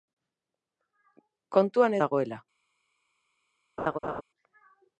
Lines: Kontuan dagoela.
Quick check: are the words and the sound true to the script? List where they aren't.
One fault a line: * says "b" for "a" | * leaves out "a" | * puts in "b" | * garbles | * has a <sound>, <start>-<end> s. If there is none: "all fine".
* has a laugh, 3.8-4.2 s